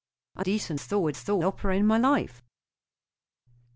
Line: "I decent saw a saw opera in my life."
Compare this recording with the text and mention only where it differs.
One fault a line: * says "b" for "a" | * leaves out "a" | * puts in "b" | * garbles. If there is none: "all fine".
all fine